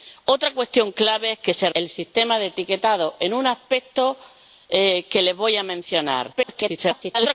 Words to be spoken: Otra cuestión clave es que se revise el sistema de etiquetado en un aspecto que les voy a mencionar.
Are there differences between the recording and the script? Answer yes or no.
yes